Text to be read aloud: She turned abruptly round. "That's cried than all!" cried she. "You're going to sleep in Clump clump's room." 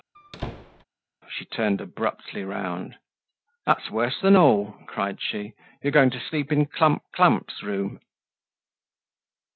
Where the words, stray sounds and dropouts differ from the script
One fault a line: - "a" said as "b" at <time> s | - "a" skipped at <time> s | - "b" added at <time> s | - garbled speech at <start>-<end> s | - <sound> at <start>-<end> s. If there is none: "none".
- squeak at 0.1-0.8 s
- "cried" said as "worse" at 3.9 s